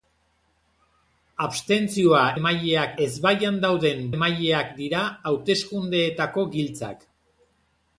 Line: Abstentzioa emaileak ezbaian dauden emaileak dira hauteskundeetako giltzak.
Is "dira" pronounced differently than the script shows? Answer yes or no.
no